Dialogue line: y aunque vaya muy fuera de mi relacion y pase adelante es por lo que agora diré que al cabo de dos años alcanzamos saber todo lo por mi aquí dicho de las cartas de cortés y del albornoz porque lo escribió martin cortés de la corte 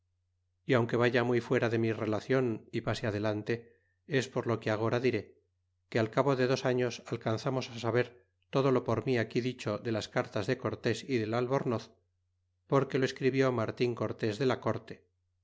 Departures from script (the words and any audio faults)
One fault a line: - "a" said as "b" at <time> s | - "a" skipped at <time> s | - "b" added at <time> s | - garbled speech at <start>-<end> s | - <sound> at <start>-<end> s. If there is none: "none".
none